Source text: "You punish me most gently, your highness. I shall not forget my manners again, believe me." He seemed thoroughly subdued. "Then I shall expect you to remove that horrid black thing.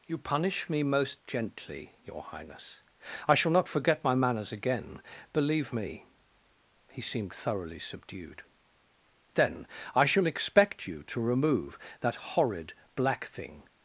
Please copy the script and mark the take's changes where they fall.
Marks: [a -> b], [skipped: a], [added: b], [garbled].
"You punish me most gently, your highness. I shall not forget my manners again, believe me." He seemed thoroughly subdued. "Then I shall expect you to remove that horrid black thing.